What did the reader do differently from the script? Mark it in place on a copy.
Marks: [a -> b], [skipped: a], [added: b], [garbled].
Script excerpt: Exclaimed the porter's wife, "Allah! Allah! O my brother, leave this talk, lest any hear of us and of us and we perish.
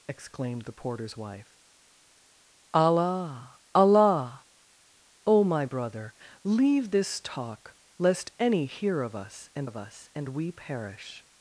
Exclaimed the porter's wife, "Allah! Allah! O my brother, leave this talk, lest any hear of us and of us and we perish.